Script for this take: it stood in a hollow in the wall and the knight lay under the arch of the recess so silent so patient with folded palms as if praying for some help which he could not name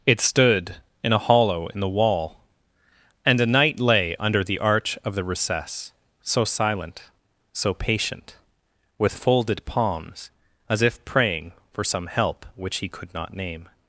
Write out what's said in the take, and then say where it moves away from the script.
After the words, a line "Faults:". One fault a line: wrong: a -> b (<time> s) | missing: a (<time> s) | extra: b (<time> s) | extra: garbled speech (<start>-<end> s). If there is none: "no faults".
it stood in a hollow in the wall and a knight lay under the arch of the recess so silent so patient with folded palms as if praying for some help which he could not name
Faults:
wrong: the -> a (3.4 s)